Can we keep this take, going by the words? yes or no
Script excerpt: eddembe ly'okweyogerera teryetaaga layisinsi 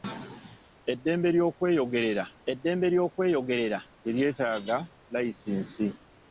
no